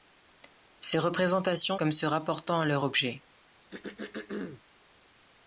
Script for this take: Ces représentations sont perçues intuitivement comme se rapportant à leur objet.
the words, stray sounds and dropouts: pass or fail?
fail